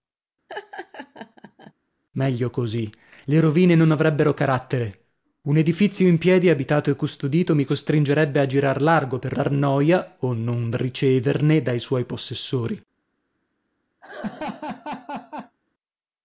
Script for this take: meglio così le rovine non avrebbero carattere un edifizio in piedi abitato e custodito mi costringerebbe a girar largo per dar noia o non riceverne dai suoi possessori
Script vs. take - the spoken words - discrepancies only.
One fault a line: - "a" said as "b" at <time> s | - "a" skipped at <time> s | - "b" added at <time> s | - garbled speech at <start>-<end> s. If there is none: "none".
none